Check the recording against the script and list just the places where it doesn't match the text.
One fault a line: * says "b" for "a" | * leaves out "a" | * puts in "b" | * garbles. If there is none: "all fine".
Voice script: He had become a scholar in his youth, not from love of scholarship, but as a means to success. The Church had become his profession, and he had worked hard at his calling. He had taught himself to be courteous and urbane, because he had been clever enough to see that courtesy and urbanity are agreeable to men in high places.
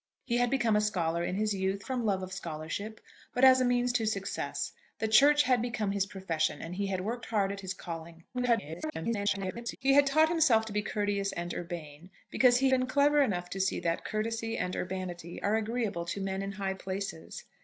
* leaves out "not"
* garbles
* leaves out "had"